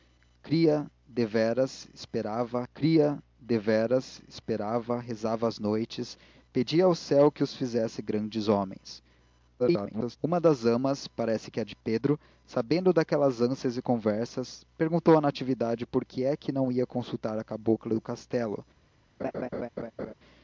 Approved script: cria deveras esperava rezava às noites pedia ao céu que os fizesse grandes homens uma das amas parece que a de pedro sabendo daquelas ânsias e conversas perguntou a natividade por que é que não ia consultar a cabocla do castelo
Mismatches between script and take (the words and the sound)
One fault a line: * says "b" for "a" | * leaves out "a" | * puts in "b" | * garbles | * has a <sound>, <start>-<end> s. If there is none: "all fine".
* puts in "cria deveras esperava"
* garbles
* has a laugh, 19.2-20.1 s